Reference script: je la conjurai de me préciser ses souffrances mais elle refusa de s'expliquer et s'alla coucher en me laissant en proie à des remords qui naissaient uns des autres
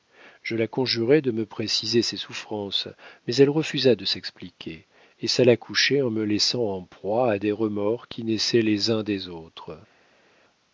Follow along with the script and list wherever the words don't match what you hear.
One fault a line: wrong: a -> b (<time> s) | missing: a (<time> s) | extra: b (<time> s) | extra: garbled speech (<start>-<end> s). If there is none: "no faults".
extra: les (8.6 s)